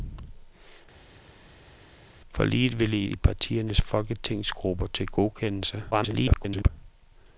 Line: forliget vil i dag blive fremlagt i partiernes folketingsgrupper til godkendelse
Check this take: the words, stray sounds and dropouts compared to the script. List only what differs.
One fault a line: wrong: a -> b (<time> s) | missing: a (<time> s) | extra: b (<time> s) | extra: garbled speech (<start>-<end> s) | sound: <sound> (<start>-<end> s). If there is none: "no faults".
missing: dag blive fremlagt (3.1 s)
extra: garbled speech (5.9-6.7 s)